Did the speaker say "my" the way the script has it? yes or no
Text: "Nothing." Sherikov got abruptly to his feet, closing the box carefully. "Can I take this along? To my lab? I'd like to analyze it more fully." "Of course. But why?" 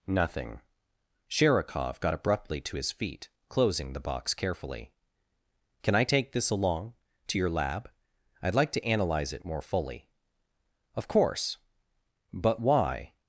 no